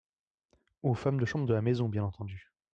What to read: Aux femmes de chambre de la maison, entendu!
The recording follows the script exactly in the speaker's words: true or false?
false